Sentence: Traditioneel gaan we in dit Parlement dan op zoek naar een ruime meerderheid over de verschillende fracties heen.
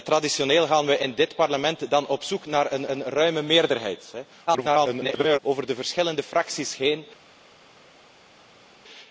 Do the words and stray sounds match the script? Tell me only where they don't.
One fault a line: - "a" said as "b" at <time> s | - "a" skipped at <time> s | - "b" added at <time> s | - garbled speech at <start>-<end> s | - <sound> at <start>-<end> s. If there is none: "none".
- "een" added at 2.9 s
- garbled speech at 4.5-5.4 s